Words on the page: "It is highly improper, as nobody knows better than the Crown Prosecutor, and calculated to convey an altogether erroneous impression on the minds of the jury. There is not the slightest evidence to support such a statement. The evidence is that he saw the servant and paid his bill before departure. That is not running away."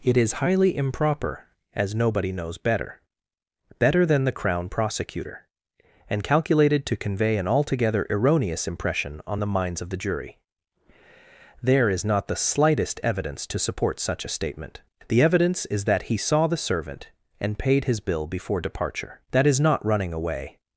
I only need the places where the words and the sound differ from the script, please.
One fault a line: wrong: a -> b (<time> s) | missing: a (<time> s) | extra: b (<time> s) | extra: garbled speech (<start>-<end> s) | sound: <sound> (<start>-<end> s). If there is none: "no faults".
extra: better (3.8 s)